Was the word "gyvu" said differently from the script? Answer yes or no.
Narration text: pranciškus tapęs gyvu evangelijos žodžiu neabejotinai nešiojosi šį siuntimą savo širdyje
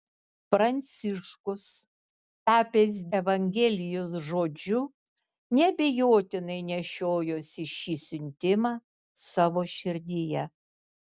yes